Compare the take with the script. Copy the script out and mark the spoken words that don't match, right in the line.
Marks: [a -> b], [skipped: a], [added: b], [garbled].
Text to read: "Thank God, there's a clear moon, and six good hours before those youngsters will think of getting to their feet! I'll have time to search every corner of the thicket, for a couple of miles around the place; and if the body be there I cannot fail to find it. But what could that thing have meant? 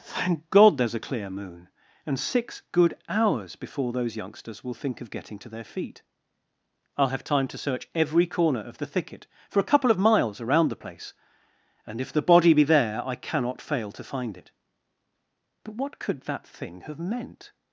"Thank God, there's a clear moon, and six good hours before those youngsters will think of getting to their feet! I'll have time to search every corner of the thicket, for a couple of miles around the place; and if the body be there I cannot fail to find it. But what could that thing have meant?